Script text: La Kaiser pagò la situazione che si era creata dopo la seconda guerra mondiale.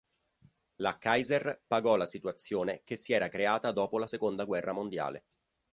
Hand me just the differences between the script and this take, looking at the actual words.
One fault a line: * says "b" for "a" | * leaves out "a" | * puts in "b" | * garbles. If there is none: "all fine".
all fine